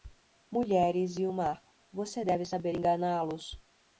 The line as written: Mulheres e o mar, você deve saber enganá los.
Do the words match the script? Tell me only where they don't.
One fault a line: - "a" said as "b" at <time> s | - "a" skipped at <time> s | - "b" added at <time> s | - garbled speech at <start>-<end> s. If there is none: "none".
none